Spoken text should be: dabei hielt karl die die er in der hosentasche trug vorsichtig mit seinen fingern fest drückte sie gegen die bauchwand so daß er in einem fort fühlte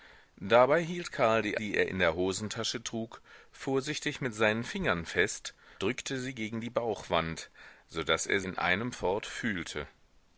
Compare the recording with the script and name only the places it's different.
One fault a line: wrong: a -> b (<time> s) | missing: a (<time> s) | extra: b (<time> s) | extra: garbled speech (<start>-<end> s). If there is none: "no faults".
no faults